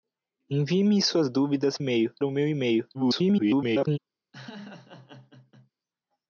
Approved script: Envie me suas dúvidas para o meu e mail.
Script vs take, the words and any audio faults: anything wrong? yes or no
yes